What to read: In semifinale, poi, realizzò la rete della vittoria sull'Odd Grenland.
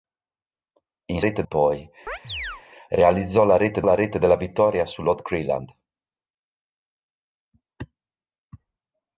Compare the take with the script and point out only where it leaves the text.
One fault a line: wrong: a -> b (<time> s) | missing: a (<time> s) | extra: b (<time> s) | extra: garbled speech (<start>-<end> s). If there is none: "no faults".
wrong: semifinale -> rete (1.2 s)
extra: la rete (3.8 s)